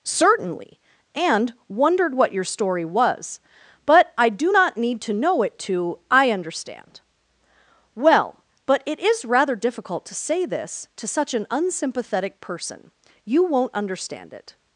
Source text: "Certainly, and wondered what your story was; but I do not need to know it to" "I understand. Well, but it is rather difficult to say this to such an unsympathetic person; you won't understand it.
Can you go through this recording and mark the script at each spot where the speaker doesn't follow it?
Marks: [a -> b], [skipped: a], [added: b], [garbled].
"Certainly, and wondered what your story was; but I do not need to know it to" "I understand. Well, but it is rather difficult to say this to such an unsympathetic person; you won't understand it.